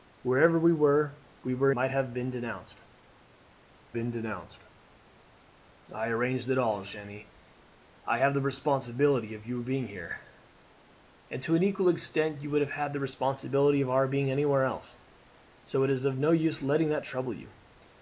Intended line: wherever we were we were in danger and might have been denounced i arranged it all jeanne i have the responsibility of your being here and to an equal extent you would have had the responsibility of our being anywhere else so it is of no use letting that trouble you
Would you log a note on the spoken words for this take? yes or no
yes